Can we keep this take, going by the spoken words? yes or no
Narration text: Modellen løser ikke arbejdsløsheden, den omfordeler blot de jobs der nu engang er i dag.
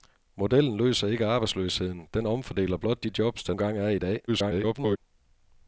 no